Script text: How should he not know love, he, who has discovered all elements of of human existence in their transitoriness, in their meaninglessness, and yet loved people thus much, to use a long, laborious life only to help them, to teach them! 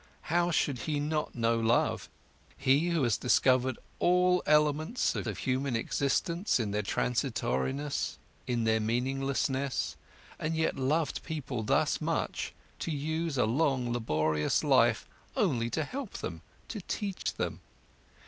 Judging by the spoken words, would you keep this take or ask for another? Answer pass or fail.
pass